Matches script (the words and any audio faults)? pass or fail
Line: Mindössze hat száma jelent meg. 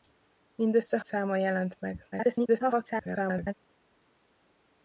fail